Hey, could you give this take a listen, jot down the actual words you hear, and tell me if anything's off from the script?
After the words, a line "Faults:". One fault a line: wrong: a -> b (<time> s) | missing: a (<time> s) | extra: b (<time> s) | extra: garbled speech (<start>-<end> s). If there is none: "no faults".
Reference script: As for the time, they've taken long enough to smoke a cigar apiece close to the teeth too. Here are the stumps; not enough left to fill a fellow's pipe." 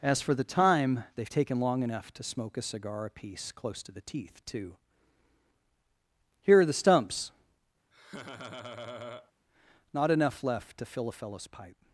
As for the time, they've taken long enough to smoke a cigar apiece close to the teeth too. Here are the stumps; not enough left to fill a fellow's pipe."
Faults:
no faults